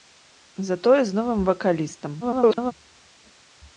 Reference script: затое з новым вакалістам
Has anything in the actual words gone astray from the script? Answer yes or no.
yes